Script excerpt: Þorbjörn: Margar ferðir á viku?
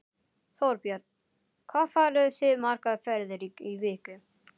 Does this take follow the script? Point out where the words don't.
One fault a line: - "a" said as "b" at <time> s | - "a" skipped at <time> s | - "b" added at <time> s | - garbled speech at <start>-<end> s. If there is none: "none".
- "Hvað farið þið" added at 1.7 s
- "á" said as "í" at 3.5 s